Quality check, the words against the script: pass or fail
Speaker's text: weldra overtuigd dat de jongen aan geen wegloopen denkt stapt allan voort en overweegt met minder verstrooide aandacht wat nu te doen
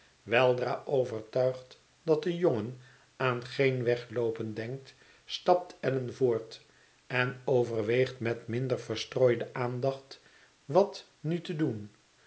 pass